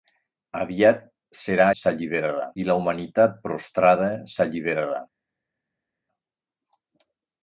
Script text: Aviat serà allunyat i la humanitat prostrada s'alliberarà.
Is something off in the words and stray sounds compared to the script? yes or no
yes